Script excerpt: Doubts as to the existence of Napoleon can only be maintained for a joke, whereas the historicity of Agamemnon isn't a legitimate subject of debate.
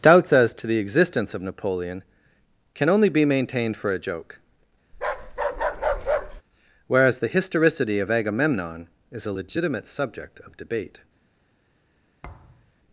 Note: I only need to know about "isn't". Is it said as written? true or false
false